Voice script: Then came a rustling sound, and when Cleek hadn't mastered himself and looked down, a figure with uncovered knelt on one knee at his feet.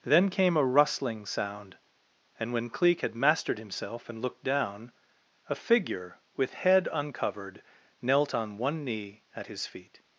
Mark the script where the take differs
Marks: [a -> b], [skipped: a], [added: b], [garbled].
Then came a rustling sound, and when Cleek [hadn't -> had] mastered himself and looked down, a figure with [added: head] uncovered knelt on one knee at his feet.